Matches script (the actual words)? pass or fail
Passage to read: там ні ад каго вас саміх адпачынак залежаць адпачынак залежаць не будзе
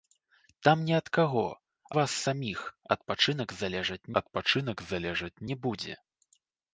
pass